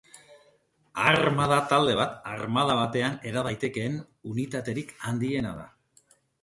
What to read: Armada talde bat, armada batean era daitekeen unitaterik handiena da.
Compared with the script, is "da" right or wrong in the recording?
right